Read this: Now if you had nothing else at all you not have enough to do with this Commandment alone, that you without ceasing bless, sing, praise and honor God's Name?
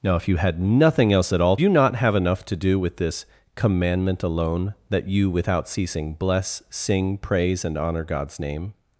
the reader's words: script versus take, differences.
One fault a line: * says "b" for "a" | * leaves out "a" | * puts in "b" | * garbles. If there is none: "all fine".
all fine